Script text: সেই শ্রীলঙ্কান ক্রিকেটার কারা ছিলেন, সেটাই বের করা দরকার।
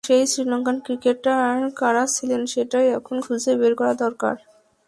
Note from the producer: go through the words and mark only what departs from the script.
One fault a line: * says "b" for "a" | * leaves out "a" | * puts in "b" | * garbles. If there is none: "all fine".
* puts in "এখন খুঁজে"